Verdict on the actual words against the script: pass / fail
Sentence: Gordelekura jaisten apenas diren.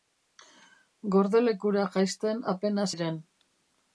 pass